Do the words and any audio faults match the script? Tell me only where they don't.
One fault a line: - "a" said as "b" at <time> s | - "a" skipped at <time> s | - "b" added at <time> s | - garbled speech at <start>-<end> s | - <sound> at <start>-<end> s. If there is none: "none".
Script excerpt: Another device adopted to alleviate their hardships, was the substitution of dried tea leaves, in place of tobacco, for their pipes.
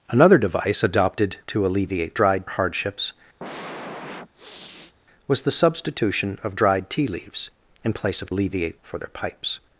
- "their" said as "dried" at 2.1 s
- sniff at 3.4-4.9 s
- "tobacco" said as "alleviate" at 8.3 s